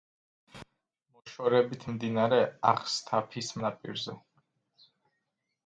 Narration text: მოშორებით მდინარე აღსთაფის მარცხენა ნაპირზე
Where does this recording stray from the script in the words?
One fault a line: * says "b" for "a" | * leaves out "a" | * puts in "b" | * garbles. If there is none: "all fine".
* leaves out "მარცხენა"